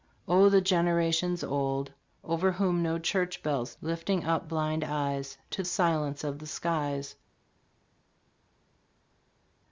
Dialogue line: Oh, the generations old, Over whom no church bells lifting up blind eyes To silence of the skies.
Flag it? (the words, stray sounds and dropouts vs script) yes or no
no